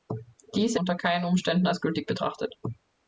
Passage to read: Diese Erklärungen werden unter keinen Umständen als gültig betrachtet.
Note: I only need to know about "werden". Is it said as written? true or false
false